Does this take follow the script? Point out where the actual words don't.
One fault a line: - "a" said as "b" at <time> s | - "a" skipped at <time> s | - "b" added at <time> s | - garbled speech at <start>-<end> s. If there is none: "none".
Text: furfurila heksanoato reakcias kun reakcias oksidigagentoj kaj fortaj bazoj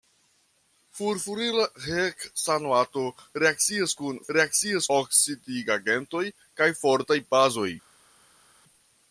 none